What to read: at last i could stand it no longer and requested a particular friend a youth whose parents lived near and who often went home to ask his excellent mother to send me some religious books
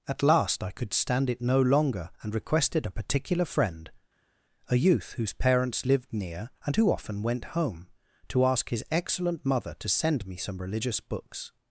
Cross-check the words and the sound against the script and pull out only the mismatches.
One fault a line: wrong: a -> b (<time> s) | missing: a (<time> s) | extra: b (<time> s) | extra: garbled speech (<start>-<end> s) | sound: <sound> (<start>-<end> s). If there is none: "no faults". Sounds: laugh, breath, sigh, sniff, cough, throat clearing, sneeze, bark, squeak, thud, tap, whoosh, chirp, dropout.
no faults